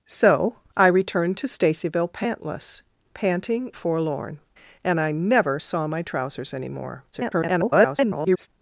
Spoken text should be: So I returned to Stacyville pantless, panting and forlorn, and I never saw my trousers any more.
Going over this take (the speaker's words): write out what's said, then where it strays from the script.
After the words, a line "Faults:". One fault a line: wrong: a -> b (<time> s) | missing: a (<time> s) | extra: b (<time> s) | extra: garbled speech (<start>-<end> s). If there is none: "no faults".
So I returned to Stacyville pantless, panting forlorn, and I never saw my trousers any more. [garbled]
Faults:
missing: and (3.7 s)
extra: garbled speech (7.1-8.5 s)